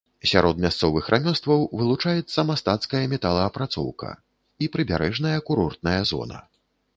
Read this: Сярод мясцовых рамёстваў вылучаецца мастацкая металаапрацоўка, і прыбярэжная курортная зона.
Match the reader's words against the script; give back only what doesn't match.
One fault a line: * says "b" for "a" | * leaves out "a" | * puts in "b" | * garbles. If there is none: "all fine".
all fine